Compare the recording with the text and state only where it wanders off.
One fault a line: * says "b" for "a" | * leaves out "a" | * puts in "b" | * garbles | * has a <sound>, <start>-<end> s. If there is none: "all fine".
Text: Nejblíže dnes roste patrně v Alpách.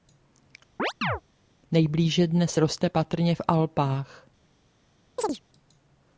* has a chirp, 0.8-1.2 s
* has a chirp, 5.2-5.4 s